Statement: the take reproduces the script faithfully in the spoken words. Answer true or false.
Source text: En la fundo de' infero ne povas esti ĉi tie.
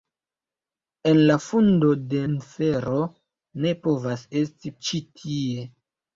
true